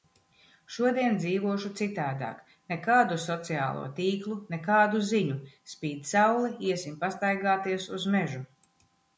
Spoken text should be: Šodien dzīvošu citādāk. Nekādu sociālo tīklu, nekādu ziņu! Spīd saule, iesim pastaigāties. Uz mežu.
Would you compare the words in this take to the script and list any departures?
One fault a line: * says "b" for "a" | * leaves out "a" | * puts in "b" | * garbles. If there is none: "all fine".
all fine